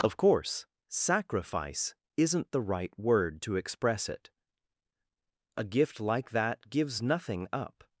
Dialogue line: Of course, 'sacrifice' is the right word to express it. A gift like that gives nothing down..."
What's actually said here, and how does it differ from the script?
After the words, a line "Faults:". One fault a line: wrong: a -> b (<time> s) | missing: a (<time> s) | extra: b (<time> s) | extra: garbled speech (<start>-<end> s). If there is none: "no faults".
Of course, 'sacrifice' isn't the right word to express it. A gift like that gives nothing up..."
Faults:
wrong: is -> isn't (2.2 s)
wrong: down -> up (7.5 s)